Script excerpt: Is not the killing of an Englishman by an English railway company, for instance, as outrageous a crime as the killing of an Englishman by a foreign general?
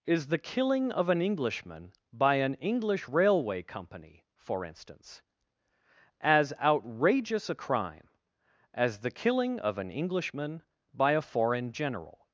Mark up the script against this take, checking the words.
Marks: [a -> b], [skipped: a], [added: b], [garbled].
Is [skipped: not] the killing of an Englishman by an English railway company, for instance, as outrageous a crime as the killing of an Englishman by a foreign general?